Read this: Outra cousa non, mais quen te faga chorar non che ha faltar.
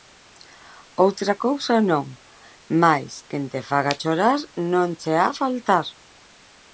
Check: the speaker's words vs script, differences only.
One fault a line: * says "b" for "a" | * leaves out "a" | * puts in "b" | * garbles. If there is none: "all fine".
all fine